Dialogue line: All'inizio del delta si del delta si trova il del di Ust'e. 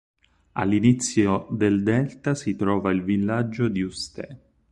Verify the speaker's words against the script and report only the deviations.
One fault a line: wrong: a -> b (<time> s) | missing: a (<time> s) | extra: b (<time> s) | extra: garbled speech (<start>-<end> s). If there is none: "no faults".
missing: del delta si (2.6 s)
wrong: del -> villaggio (3.0 s)